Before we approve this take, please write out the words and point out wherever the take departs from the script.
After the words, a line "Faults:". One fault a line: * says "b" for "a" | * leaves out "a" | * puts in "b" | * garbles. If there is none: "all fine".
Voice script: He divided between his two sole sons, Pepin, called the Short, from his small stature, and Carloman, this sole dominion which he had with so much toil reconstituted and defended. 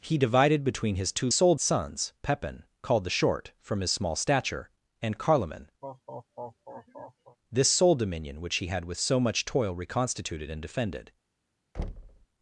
He divided between his two sole sons, Pepin, called the Short, from his small stature, and Carloman, this sole dominion which he had with so much toil reconstituted and defended.
Faults:
all fine